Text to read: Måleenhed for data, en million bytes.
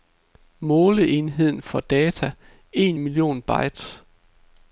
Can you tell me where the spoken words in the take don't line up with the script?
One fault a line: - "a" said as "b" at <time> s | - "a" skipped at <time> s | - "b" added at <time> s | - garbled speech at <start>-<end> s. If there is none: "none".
none